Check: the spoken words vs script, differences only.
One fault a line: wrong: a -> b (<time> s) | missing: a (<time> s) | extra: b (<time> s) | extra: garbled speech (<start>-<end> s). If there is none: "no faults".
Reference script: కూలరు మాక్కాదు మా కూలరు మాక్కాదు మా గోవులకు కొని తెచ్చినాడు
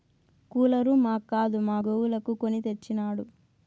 missing: కూలరు మాక్కాదు మా (1.8 s)